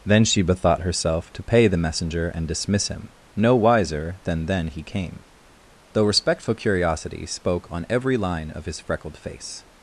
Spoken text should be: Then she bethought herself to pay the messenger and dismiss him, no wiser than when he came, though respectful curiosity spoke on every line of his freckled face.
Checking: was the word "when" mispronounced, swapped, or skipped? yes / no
yes